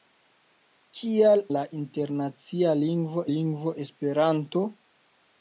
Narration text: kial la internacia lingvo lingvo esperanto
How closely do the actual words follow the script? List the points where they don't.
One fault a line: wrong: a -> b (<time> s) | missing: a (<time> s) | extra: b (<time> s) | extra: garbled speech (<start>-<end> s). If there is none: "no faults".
no faults